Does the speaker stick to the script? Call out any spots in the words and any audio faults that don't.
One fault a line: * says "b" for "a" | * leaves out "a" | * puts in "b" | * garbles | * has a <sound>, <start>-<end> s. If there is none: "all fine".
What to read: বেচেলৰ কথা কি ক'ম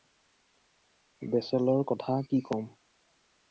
all fine